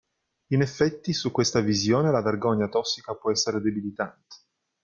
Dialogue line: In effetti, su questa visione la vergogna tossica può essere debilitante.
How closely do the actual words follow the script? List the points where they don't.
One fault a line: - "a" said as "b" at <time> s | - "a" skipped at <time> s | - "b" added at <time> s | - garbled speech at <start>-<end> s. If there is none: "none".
none